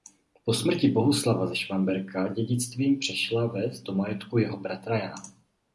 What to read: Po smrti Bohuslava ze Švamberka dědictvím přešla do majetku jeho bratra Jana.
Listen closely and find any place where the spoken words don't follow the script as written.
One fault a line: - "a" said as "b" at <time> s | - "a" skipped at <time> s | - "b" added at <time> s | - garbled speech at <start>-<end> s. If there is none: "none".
- "ves" added at 3.5 s